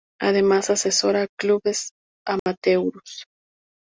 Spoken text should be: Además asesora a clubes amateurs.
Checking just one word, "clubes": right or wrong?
right